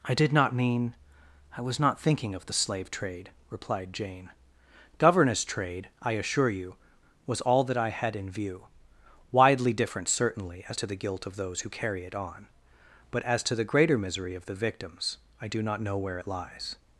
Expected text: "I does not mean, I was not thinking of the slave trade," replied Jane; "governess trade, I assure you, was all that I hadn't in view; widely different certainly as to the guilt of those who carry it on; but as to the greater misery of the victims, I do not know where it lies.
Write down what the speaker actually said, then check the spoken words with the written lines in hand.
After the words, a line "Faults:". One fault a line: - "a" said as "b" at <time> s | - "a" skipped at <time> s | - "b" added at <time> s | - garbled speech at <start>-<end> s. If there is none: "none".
"I did not mean, I was not thinking of the slave trade," replied Jane; "governess trade, I assure you, was all that I had in view; widely different certainly as to the guilt of those who carry it on; but as to the greater misery of the victims, I do not know where it lies.
Faults:
- "does" said as "did" at 0.1 s
- "hadn't" said as "had" at 7.9 s